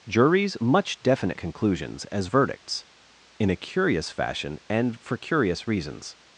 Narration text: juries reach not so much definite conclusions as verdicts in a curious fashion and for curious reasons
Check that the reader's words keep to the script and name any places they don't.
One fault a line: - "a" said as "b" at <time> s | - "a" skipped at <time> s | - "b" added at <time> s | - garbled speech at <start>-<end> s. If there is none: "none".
- "reach not so" skipped at 0.6 s